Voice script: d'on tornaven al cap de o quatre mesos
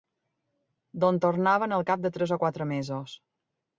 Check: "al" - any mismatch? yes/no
no